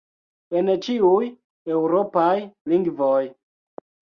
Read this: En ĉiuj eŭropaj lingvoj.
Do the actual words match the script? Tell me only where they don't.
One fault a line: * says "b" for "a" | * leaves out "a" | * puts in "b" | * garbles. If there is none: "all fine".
all fine